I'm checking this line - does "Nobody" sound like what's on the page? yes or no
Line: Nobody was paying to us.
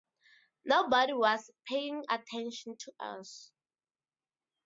yes